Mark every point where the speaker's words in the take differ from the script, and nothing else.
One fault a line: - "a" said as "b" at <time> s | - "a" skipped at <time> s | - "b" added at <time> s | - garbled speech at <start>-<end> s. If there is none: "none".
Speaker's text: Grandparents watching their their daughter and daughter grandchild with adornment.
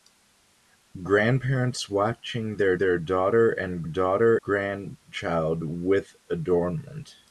none